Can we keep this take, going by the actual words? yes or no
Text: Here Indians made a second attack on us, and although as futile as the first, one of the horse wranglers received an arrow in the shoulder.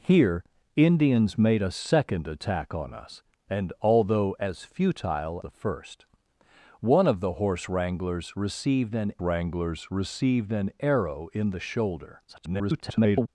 no